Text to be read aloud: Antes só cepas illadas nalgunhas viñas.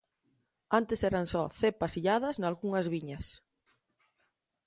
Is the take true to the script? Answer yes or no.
no